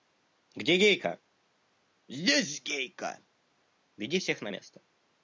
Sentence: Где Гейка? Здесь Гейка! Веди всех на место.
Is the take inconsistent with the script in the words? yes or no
no